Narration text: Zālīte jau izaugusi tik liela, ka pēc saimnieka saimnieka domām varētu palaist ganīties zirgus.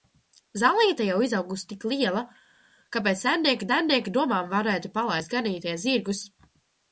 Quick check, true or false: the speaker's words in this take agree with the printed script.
true